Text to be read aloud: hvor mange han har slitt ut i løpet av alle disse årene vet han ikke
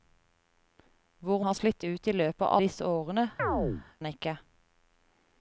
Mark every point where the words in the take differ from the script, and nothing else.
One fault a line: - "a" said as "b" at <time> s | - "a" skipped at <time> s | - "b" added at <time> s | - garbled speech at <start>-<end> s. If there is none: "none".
- "mange han" skipped at 1.4 s
- "alle" skipped at 2.5 s
- "vet" skipped at 3.3 s